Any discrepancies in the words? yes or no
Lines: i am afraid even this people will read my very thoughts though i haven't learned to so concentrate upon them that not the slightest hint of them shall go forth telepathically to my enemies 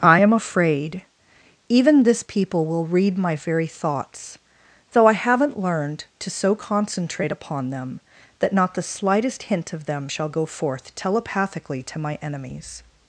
no